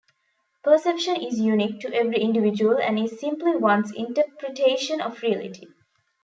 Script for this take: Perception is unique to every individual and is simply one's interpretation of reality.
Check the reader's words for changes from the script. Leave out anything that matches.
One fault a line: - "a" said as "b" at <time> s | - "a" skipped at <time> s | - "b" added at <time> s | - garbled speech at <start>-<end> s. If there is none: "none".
none